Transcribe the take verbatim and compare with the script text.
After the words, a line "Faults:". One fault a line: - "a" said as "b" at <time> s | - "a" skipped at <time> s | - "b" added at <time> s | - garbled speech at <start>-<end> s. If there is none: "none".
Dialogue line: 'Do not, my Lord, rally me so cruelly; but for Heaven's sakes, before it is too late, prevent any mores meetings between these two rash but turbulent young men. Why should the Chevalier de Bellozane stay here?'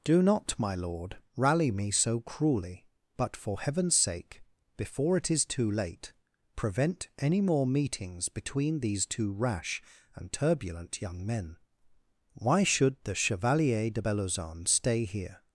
'Do not, my Lord, rally me so cruelly; but for Heaven's sake, before it is too late, prevent any more meetings between these two rash and turbulent young men. Why should the Chevalier de Bellozane stay here?'
Faults:
- "sakes" said as "sake" at 4.0 s
- "mores" said as "more" at 7.4 s
- "but" said as "and" at 10.1 s